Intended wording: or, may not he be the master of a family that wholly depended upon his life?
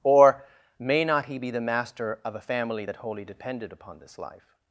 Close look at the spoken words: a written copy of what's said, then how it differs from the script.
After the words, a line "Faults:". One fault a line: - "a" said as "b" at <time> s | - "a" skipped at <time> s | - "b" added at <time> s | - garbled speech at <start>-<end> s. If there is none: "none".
or, may not he be the master of a family that wholly depended upon this life?
Faults:
- "his" said as "this" at 4.0 s